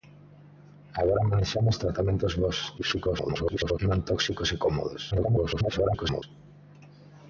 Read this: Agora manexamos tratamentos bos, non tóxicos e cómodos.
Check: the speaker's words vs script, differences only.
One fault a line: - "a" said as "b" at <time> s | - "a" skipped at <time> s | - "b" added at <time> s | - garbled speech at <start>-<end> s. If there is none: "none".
- garbled speech at 2.8-3.8 s
- garbled speech at 5.1-6.2 s